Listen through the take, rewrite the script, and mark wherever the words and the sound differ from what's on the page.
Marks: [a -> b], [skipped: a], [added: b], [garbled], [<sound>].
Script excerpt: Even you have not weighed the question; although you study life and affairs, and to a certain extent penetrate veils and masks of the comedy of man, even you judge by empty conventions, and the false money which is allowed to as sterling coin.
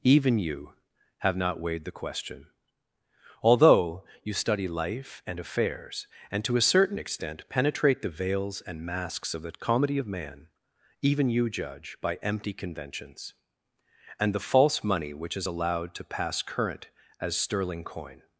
Even you have not weighed the question; although you study life and affairs, and to a certain extent penetrate [added: the] veils and masks of the comedy of man, even you judge by empty conventions, and the false money which is allowed to [added: pass current] as sterling coin.